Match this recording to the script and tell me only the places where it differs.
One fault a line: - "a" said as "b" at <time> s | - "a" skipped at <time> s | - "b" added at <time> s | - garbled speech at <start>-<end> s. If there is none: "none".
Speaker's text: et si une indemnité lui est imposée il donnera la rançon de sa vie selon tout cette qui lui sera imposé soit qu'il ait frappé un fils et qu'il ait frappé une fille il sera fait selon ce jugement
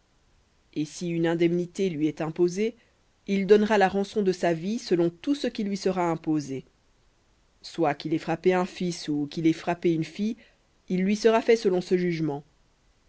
- "cette" said as "ce" at 5.3 s
- "et" said as "ou" at 9.1 s
- "lui" added at 11.0 s